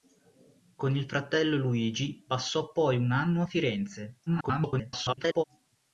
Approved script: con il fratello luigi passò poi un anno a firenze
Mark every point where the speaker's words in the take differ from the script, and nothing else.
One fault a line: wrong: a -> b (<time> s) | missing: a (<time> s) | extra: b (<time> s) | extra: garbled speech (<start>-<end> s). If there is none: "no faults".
extra: garbled speech (4.3-5.4 s)